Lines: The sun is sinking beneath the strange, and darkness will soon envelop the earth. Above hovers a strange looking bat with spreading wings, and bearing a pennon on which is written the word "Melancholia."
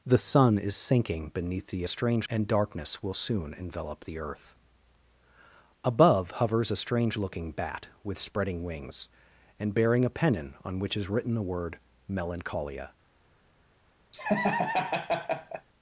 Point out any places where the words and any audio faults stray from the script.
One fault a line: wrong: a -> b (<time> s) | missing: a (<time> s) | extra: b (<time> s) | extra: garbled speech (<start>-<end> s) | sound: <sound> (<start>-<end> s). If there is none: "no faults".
sound: laugh (14.1-15.7 s)